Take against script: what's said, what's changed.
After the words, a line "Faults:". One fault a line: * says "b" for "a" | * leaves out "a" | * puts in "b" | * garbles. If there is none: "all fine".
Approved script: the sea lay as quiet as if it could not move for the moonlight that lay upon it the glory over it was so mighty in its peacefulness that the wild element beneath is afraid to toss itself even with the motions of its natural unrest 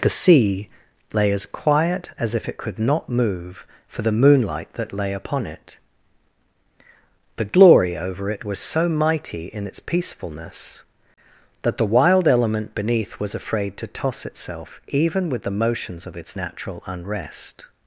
the sea lay as quiet as if it could not move for the moonlight that lay upon it the glory over it was so mighty in its peacefulness that the wild element beneath was afraid to toss itself even with the motions of its natural unrest
Faults:
* says "was" for "is"